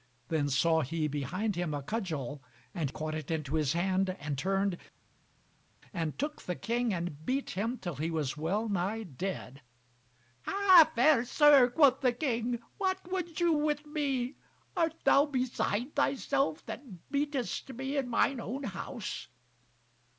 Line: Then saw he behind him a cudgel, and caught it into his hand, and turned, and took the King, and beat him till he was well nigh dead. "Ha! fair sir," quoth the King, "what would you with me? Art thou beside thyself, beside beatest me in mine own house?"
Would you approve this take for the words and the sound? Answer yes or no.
no